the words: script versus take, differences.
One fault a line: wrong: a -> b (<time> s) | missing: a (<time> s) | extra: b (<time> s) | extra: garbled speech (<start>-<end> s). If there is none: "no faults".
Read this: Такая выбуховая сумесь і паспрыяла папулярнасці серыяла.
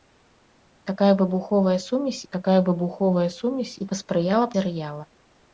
extra: такая выбуховая сумесь (2.3 s)
missing: папулярнасці (4.5 s)